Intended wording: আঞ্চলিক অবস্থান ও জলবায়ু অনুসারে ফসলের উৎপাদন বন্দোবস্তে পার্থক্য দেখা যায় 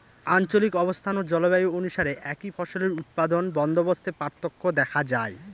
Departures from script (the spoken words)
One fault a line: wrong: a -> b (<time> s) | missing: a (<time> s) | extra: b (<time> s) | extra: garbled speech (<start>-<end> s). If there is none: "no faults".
extra: একই (2.3 s)